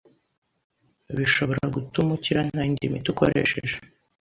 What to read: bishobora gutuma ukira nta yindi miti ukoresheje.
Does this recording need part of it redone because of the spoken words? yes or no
no